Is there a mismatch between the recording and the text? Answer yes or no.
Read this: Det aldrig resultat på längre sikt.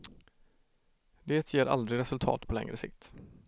yes